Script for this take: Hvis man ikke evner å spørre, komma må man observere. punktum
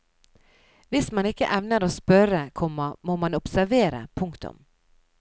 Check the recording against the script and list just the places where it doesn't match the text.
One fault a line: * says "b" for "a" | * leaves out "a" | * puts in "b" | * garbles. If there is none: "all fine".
all fine